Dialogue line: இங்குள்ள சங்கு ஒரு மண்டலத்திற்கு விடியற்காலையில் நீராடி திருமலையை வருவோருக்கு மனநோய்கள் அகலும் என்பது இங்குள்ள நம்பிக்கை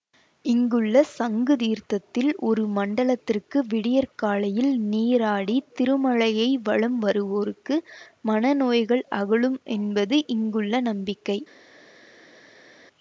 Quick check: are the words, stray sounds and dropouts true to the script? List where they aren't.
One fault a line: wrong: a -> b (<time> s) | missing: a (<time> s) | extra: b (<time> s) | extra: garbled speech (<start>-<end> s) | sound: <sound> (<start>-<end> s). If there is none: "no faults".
extra: தீர்த்தத்தில் (1.6 s)
extra: வலம் (6.6 s)